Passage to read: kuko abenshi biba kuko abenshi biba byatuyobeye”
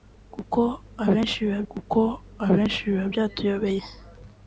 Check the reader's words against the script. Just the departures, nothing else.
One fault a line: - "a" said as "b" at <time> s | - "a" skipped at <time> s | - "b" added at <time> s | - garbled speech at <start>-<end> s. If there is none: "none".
none